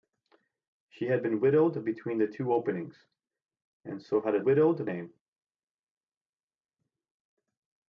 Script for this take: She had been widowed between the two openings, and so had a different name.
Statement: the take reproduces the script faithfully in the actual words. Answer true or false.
false